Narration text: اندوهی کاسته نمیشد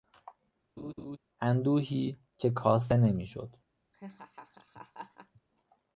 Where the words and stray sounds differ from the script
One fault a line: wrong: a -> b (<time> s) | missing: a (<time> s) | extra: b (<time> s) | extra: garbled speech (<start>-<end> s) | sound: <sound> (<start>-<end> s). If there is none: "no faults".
sound: laugh (0.8-1.2 s)
extra: که (2.4 s)
sound: laugh (3.9-5.4 s)